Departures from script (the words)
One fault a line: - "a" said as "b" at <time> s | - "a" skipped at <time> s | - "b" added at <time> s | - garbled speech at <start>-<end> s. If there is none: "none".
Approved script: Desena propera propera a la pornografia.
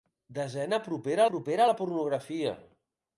none